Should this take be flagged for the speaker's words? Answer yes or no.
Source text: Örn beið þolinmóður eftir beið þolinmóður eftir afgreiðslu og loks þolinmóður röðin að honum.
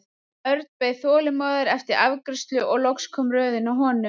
yes